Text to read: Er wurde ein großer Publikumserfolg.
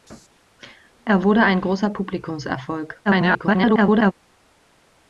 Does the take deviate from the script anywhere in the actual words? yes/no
yes